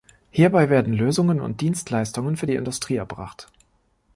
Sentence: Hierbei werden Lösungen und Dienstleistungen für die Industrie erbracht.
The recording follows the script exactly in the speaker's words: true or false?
true